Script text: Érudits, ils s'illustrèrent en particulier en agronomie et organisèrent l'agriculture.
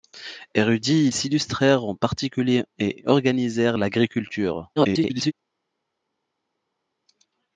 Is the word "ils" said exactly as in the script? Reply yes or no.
no